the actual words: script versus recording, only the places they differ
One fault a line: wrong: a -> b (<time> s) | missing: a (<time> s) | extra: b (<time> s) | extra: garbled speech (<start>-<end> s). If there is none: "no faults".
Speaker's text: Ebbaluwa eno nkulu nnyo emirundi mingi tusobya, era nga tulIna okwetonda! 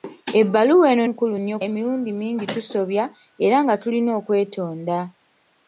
no faults